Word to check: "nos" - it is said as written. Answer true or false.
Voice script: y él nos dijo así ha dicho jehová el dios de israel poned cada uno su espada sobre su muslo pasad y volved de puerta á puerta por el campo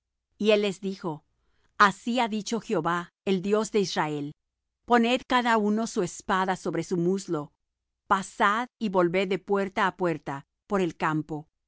false